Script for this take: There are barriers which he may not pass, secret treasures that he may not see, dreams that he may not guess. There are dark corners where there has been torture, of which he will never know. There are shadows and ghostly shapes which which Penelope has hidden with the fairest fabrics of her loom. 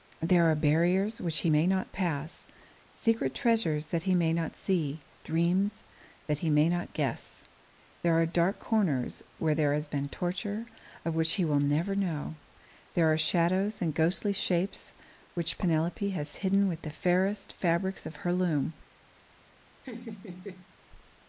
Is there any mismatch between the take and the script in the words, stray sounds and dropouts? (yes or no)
yes